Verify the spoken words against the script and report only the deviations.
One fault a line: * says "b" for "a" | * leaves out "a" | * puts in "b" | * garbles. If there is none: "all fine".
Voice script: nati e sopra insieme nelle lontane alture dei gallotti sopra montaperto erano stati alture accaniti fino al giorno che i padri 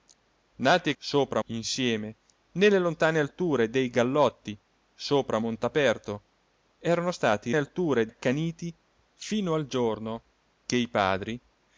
all fine